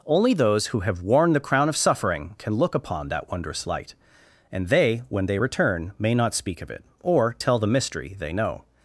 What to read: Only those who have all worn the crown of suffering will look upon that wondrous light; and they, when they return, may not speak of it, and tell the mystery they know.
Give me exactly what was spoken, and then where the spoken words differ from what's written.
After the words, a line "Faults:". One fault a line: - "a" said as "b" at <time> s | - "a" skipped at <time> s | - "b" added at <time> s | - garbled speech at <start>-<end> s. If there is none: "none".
Only those who have worn the crown of suffering can look upon that wondrous light; and they, when they return, may not speak of it, or tell the mystery they know.
Faults:
- "all" skipped at 1.0 s
- "will" said as "can" at 2.4 s
- "and" said as "or" at 7.0 s